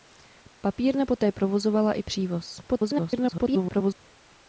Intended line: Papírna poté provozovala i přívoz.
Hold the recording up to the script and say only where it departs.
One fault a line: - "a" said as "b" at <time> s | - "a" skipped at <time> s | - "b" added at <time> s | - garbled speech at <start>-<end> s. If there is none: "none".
- garbled speech at 2.7-4.0 s